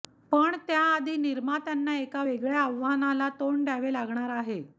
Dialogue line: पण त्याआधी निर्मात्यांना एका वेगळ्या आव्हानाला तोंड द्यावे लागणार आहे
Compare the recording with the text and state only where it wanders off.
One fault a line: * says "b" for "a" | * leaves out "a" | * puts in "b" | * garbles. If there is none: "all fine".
all fine